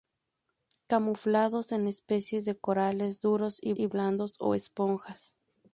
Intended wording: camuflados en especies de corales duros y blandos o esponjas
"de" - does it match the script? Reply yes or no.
yes